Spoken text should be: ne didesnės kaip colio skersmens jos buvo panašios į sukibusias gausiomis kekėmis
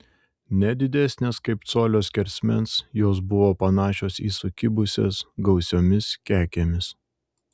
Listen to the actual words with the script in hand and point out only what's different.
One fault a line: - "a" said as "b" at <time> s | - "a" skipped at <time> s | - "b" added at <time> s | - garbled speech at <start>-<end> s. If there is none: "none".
none